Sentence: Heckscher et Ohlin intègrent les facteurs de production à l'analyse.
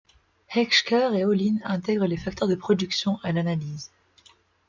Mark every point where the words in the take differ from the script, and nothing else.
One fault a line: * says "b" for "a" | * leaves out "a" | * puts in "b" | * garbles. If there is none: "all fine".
all fine